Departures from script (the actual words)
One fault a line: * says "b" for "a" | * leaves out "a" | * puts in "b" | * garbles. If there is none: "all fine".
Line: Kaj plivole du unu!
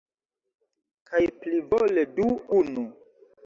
all fine